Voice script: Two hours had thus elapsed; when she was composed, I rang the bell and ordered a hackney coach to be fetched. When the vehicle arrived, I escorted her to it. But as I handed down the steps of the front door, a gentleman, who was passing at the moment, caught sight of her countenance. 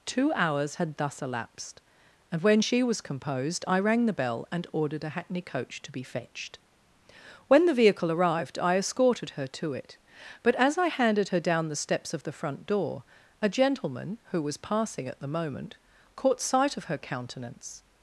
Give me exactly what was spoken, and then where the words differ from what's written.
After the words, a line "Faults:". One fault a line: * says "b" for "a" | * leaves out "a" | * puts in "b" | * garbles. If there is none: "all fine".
Two hours had thus elapsed; and when she was composed, I rang the bell and ordered a hackney coach to be fetched. When the vehicle arrived, I escorted her to it. But as I handed her down the steps of the front door, a gentleman, who was passing at the moment, caught sight of her countenance.
Faults:
* puts in "and"
* puts in "her"